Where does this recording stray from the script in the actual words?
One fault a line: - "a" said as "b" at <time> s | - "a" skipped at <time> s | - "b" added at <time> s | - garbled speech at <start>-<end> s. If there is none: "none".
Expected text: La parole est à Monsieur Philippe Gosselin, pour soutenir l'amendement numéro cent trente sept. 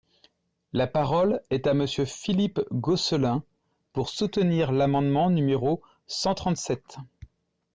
none